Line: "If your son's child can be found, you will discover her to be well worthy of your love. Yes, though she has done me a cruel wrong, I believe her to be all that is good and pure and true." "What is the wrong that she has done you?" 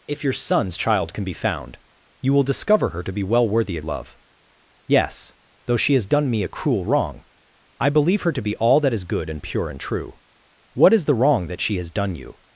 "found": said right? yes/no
yes